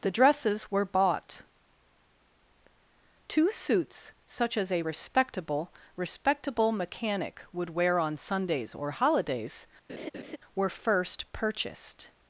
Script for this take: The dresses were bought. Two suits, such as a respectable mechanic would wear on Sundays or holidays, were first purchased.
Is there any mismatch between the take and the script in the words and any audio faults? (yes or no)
yes